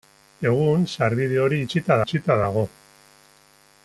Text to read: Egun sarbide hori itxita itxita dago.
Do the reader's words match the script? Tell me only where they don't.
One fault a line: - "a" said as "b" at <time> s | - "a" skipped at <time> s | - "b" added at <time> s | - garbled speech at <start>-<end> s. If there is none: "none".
none